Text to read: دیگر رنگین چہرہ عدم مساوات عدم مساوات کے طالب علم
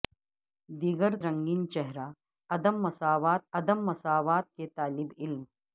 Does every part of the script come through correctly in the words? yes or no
yes